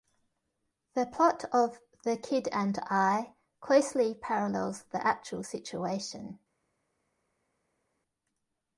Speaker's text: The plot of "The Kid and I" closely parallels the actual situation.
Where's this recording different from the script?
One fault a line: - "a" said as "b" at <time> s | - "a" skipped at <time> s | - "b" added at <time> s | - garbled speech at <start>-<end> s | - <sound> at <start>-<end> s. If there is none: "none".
none